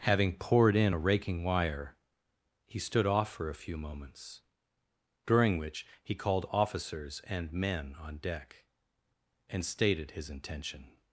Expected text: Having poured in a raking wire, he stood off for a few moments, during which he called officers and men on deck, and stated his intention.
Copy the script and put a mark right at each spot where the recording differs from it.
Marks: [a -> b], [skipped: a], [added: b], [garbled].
Having poured in a raking wire, he stood off for a few moments, during which he called officers and men on deck, and stated his intention.